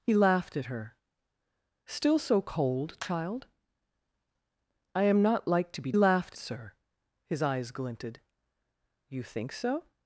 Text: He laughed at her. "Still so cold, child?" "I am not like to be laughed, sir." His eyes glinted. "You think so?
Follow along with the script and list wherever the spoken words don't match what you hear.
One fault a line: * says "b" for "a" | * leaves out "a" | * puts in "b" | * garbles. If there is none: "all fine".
all fine